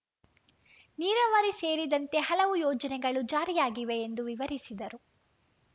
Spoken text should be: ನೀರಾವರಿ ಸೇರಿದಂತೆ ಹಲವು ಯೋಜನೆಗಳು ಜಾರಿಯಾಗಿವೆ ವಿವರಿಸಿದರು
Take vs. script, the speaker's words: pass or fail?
fail